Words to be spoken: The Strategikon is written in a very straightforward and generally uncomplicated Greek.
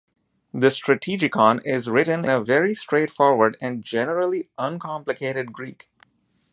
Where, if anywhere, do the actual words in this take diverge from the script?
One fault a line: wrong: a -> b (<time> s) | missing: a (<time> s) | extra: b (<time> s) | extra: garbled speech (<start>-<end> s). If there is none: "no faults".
missing: in (2.2 s)